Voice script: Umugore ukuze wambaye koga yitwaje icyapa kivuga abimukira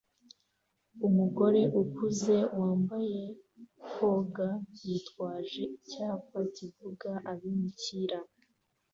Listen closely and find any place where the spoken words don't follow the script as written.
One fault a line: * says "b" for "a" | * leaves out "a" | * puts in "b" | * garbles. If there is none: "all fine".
all fine